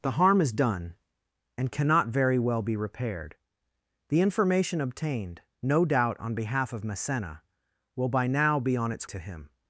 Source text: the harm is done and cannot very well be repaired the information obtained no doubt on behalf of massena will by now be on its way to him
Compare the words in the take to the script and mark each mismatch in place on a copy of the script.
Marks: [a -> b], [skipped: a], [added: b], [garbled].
the harm is done and cannot very well be repaired the information obtained no doubt on behalf of massena will by now be on its [skipped: way] to him